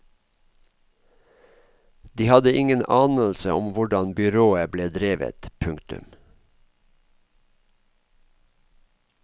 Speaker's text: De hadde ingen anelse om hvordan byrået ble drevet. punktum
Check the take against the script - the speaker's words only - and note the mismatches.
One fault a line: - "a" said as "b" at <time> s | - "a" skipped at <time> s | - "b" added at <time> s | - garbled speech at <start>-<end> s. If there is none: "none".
none